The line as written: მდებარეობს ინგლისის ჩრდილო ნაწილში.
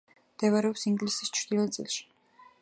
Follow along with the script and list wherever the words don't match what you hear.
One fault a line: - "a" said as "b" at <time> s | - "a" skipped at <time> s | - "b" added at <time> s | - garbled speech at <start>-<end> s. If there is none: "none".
none